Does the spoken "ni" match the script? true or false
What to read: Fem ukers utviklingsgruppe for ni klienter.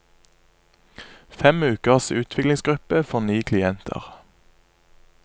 true